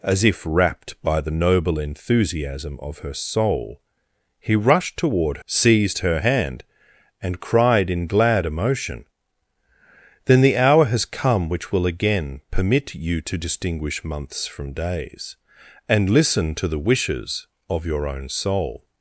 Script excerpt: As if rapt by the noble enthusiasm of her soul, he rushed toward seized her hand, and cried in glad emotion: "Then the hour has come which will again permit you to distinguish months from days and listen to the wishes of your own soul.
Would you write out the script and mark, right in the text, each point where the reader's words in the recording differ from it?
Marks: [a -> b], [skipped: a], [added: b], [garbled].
As if rapt by the noble enthusiasm of her soul, he rushed toward seized her hand, and cried in glad emotion: "Then the hour has come which will again permit you to distinguish months from days and listen to the wishes of your own soul.